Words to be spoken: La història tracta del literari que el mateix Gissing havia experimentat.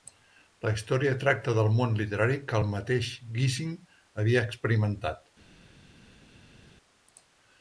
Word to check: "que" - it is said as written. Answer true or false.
true